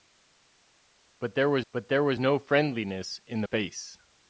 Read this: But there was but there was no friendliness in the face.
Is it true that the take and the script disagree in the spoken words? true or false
false